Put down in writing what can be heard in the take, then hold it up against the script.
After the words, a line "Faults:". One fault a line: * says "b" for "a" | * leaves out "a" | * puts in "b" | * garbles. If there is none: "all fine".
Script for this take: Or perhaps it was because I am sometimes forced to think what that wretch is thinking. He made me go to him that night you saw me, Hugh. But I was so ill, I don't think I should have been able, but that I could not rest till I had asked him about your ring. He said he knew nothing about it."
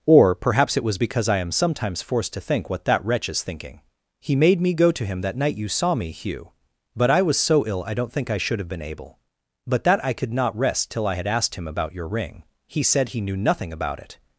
Or perhaps it was because I am sometimes forced to think what that wretch is thinking. He made me go to him that night you saw me, Hugh. But I was so ill, I don't think I should have been able, but that I could not rest till I had asked him about your ring. He said he knew nothing about it."
Faults:
all fine